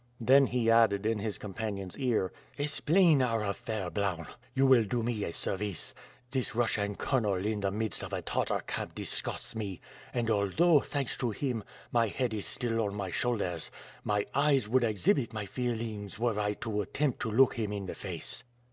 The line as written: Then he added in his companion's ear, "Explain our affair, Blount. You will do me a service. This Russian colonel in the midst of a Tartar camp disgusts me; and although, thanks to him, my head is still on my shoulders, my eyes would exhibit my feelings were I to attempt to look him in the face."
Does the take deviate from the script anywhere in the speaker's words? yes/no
no